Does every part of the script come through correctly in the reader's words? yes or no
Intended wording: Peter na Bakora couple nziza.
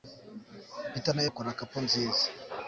yes